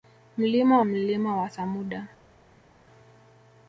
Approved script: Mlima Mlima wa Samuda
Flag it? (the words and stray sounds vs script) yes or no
no